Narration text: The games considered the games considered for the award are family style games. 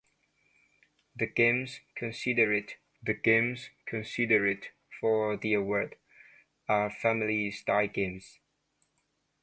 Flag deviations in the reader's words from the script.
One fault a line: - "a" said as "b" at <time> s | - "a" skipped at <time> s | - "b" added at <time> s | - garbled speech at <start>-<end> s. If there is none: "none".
none